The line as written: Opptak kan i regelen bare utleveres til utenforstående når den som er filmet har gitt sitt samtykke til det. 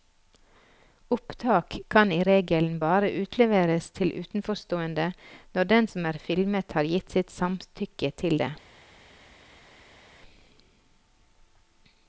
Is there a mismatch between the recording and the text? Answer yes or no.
no